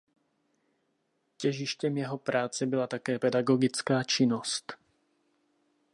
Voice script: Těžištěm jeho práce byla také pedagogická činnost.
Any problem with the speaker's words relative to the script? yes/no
no